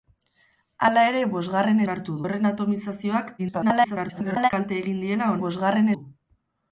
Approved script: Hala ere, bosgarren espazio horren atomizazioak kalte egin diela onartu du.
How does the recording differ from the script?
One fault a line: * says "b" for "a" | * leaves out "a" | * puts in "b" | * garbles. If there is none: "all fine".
* says "onartu" for "espazio"
* garbles
* says "bosgarren" for "onartu"